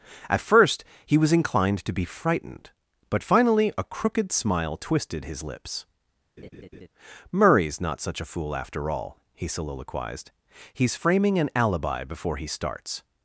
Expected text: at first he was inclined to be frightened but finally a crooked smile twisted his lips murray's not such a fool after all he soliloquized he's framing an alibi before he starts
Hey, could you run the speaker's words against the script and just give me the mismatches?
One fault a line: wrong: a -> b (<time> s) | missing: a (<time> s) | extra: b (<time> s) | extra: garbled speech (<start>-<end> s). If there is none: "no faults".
no faults